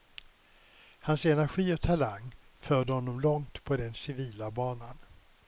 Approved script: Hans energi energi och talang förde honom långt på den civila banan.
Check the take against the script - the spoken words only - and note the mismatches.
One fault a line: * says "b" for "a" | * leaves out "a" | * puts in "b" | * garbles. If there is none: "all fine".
* leaves out "energi"